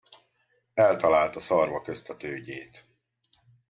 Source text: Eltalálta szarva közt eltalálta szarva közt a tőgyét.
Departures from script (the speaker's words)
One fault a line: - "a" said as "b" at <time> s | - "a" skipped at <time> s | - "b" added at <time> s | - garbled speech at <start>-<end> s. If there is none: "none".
- "eltalálta szarva közt" skipped at 2.1 s